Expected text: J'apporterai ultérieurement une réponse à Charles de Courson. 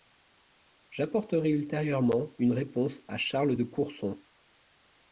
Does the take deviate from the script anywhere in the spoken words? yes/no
no